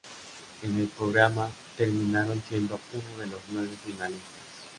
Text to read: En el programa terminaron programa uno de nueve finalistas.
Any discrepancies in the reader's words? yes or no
yes